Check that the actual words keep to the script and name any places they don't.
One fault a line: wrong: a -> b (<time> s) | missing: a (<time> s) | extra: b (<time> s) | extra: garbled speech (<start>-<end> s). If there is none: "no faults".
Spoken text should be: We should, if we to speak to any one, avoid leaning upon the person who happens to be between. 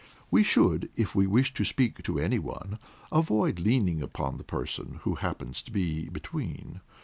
extra: wish (1.3 s)